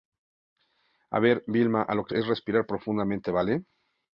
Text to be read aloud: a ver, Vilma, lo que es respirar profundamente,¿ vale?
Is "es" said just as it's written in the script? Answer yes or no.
yes